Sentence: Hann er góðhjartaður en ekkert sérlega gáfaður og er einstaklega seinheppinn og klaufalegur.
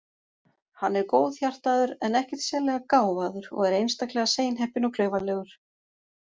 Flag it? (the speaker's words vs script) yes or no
no